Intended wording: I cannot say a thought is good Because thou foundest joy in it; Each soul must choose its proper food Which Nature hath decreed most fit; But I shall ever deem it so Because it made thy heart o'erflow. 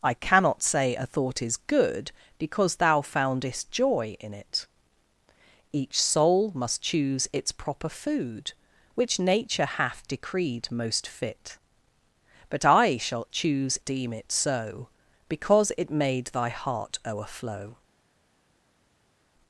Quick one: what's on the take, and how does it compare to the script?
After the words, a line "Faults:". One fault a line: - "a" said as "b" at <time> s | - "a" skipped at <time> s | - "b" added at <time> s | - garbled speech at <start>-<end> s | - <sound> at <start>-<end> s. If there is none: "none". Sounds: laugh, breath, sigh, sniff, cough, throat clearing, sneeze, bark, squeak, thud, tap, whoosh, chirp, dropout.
I cannot say a thought is good Because thou foundest joy in it; Each soul must choose its proper food Which Nature hath decreed most fit; But I shall choose deem it so Because it made thy heart o'erflow.
Faults:
- "ever" said as "choose" at 13.3 s